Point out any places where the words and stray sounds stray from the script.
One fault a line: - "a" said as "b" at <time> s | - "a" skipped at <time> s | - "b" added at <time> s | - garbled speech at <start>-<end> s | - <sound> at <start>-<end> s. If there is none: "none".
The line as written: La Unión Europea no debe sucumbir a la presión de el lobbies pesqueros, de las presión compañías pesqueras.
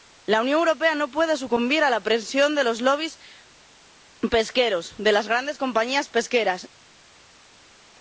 - "debe" said as "puede" at 1.1 s
- "el" said as "los" at 2.6 s
- "presión" said as "grandes" at 5.3 s